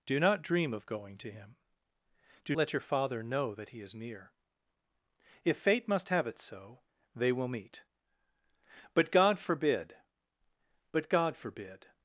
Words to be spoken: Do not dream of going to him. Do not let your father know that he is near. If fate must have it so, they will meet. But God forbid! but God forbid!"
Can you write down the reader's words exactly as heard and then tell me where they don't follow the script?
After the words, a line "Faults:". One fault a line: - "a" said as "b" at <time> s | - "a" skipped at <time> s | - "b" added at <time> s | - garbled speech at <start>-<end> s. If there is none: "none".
Do not dream of going to him. Do let your father know that he is near. If fate must have it so, they will meet. But God forbid! but God forbid!"
Faults:
- "not" skipped at 2.5 s